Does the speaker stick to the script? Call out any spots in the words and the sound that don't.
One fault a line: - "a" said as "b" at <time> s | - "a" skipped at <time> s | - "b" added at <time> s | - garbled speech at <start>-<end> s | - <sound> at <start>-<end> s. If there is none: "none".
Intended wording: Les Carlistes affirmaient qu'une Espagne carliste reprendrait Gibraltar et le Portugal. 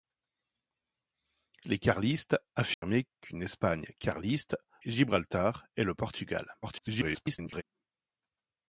- dropout at 2.7-2.8 s
- "reprendrait" skipped at 4.6 s
- garbled speech at 6.6-7.6 s